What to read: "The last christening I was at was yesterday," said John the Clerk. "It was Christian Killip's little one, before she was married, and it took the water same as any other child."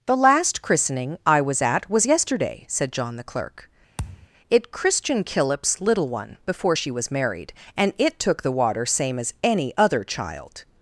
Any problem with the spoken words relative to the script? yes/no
yes